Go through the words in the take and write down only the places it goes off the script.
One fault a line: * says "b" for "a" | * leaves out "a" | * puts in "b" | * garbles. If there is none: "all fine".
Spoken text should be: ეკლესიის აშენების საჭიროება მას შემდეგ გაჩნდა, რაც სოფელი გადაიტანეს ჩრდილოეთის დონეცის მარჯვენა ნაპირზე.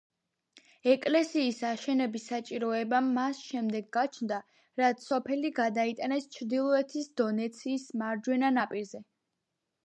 all fine